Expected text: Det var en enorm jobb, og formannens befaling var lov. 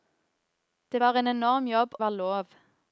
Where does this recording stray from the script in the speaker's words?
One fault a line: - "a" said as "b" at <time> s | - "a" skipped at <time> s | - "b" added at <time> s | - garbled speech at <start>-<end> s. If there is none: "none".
- "og formannens befaling" skipped at 1.9 s